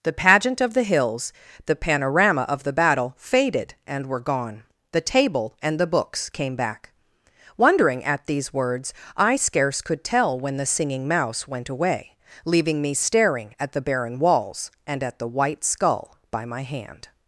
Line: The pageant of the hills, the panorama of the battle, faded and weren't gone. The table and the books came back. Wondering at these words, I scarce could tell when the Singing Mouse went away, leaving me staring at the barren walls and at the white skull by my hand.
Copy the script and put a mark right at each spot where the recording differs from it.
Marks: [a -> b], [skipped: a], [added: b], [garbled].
The pageant of the hills, the panorama of the battle, faded and [weren't -> were] gone. The table and the books came back. Wondering at these words, I scarce could tell when the Singing Mouse went away, leaving me staring at the barren walls and at the white skull by my hand.